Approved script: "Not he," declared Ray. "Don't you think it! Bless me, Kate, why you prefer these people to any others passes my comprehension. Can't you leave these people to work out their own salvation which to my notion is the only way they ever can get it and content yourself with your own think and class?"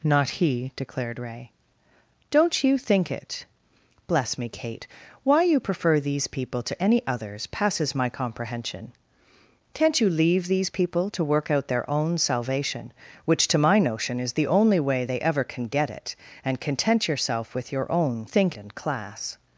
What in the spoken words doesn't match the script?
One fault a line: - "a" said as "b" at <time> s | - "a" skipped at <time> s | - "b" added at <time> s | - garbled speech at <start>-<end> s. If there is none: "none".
none